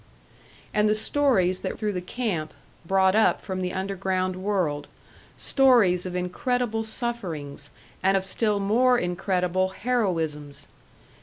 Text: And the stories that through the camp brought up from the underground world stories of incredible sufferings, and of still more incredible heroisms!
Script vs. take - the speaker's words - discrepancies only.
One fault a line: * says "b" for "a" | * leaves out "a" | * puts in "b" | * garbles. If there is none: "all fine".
all fine